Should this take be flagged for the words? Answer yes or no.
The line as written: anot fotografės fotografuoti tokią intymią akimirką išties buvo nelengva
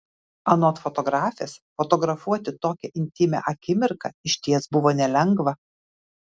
no